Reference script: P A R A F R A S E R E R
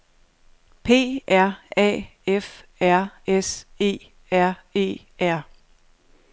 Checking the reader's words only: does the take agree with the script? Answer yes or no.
no